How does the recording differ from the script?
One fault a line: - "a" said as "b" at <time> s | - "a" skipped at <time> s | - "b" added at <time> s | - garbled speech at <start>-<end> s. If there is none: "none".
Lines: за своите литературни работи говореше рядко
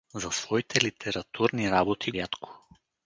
- "говореше" skipped at 2.1 s